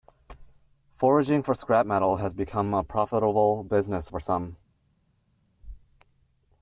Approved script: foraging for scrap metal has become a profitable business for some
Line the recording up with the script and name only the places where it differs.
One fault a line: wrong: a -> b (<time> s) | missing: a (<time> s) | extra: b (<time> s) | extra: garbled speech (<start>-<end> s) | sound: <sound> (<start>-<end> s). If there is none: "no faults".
no faults